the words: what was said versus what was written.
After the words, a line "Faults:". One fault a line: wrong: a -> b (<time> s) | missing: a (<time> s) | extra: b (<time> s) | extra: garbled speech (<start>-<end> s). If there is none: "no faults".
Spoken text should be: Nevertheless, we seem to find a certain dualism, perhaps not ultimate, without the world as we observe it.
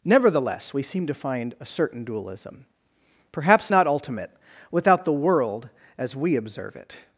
Nevertheless, we seem to find a certain dualism, perhaps not ultimate, without the world as we observe it.
Faults:
no faults